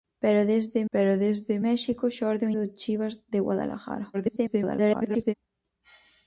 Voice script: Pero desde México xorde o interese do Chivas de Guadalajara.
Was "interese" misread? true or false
true